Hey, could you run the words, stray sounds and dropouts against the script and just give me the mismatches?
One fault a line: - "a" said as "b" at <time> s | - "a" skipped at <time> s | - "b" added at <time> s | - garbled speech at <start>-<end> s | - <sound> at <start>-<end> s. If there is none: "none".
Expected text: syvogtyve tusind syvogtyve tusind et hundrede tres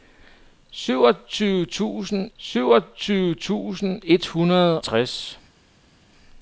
none